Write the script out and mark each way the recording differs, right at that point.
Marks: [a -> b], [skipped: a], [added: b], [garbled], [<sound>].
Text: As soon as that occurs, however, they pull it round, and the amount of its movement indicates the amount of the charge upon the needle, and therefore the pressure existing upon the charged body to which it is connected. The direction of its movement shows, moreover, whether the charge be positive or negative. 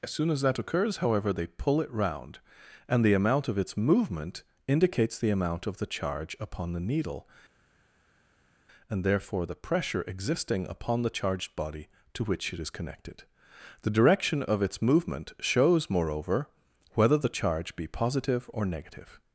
As soon as that occurs, however, they pull it round, and the amount of its movement indicates the amount of the charge upon the needle, and therefore the pressure existing upon the charged body to which it is connected. The direction of its movement shows, moreover, whether the charge be positive or negative.